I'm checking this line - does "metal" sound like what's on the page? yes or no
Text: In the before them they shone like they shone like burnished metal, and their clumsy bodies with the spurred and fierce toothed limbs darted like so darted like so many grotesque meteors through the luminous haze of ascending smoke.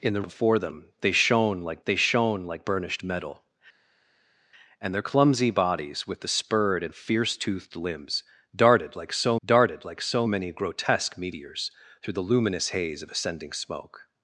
yes